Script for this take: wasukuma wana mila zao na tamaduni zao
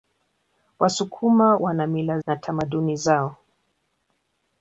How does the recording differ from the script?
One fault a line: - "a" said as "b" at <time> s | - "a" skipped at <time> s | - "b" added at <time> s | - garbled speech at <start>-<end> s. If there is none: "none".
- "zao" skipped at 2.2 s